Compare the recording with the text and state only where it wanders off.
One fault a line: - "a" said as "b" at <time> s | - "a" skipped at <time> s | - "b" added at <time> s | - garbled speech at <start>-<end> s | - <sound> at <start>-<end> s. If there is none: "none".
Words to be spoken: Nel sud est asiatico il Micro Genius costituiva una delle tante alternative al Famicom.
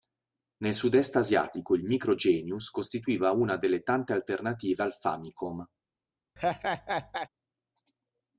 - laugh at 6.4-7.3 s